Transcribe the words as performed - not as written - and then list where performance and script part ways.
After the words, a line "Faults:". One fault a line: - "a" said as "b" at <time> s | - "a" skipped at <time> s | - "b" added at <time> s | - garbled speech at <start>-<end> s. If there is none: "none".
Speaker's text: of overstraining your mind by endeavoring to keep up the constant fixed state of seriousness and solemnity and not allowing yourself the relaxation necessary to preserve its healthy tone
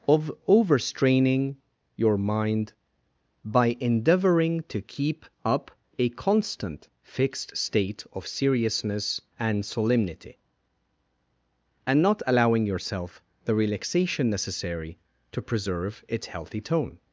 of overstraining your mind by endeavoring to keep up a constant fixed state of seriousness and solemnity and not allowing yourself the relaxation necessary to preserve its healthy tone
Faults:
- "the" said as "a" at 6.0 s